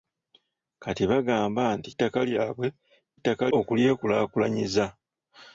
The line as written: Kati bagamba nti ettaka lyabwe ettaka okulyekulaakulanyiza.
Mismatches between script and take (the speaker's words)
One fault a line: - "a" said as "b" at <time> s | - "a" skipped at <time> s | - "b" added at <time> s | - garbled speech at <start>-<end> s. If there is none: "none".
none